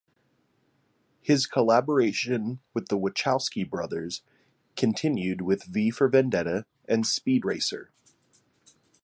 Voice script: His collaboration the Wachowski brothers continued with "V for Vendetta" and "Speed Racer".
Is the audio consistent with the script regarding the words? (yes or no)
no